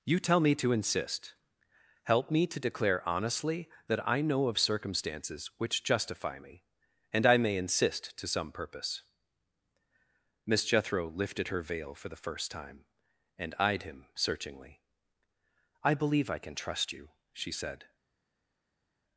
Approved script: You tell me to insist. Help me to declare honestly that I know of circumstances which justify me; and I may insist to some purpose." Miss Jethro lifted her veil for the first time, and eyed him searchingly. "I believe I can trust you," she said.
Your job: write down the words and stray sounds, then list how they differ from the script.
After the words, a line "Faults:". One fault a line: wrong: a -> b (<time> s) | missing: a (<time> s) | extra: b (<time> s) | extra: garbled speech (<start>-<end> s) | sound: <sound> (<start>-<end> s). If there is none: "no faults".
You tell me to insist. Help me to declare honestly that I know of circumstances which justify me; and I may insist to some purpose." Miss Jethro lifted her veil for the first time, and eyed him searchingly. "I believe I can trust you," she said.
Faults:
no faults